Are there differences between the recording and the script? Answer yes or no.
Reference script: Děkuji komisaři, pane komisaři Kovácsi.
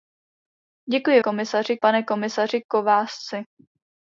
no